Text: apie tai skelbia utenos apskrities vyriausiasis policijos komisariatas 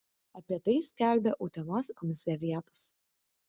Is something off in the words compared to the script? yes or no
yes